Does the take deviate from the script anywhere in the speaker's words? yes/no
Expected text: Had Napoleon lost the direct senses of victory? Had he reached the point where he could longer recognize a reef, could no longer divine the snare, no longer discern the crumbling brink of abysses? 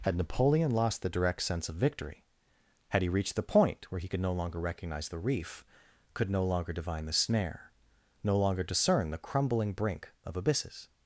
yes